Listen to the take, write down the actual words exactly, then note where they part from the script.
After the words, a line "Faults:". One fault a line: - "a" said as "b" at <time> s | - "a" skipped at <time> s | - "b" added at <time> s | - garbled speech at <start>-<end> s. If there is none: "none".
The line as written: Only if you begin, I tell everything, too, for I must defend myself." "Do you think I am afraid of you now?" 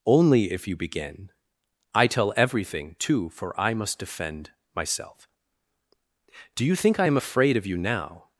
Only if you begin, I tell everything, too, for I must defend myself." "Do you think I am afraid of you now?"
Faults:
none